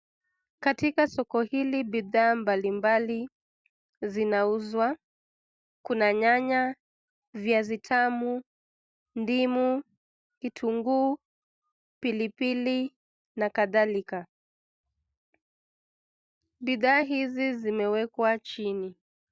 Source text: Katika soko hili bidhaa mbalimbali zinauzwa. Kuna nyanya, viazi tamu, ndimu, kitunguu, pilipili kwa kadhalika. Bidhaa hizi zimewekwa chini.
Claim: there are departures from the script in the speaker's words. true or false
true